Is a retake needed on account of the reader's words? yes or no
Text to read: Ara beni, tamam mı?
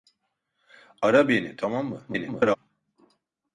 yes